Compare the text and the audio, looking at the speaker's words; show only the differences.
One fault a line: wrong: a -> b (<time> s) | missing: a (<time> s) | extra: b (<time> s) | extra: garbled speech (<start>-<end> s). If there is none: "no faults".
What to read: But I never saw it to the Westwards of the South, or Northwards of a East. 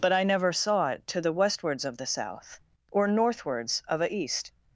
no faults